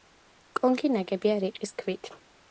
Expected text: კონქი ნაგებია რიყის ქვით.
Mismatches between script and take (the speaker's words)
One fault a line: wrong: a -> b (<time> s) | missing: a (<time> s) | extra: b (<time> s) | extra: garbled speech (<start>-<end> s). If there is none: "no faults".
no faults